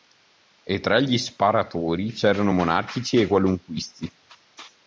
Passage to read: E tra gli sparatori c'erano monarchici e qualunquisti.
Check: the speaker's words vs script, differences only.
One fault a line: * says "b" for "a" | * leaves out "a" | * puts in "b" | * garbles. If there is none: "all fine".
all fine